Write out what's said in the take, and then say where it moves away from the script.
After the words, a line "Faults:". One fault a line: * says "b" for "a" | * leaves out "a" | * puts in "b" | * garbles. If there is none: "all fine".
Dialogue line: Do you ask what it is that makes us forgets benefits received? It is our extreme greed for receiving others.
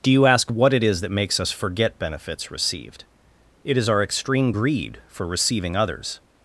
Do you ask what it is that makes us forget benefits received? It is our extreme greed for receiving others.
Faults:
* says "forget" for "forgets"